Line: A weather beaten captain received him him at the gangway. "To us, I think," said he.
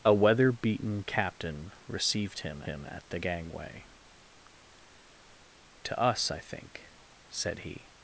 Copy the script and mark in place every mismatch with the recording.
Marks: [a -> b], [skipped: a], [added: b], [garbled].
A weather beaten captain received him him at the gangway. "To us, I think," said he.